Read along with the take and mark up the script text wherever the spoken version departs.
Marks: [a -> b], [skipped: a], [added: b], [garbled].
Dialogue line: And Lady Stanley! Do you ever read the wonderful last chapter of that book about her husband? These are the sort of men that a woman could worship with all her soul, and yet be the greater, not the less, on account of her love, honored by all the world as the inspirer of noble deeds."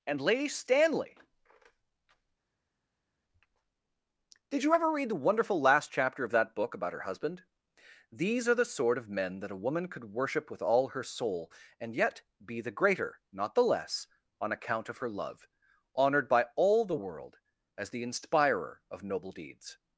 And Lady Stanley! [Do -> Did] you ever read the wonderful last chapter of that book about her husband? These are the sort of men that a woman could worship with all her soul, and yet be the greater, not the less, on account of her love, honored by all the world as the inspirer of noble deeds."